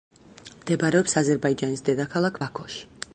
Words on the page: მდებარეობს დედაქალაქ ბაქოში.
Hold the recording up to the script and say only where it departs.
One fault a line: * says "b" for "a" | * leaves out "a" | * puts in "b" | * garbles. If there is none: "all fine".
* puts in "აზერბაიჯანის"